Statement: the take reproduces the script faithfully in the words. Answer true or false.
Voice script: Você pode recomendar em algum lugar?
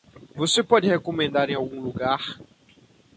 true